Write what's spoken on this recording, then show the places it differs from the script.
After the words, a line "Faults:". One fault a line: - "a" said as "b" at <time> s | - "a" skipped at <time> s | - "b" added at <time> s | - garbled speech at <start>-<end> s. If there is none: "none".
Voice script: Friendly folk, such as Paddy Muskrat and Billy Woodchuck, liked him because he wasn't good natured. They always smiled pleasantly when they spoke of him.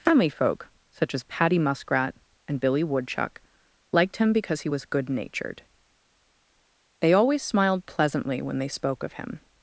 Friendly folk, such as Paddy Muskrat and Billy Woodchuck, liked him because he was good natured. They always smiled pleasantly when they spoke of him.
Faults:
- "wasn't" said as "was" at 4.7 s